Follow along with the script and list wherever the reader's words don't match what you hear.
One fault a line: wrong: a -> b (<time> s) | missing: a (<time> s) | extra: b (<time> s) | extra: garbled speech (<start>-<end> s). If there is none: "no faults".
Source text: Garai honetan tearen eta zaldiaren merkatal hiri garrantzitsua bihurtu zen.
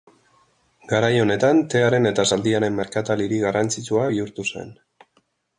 no faults